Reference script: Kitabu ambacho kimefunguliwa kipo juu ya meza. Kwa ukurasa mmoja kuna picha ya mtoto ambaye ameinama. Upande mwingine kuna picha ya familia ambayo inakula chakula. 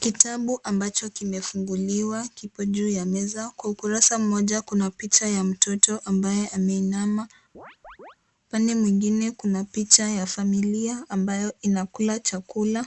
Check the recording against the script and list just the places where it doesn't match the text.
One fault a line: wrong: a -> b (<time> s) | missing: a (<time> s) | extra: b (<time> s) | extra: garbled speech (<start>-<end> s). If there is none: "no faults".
no faults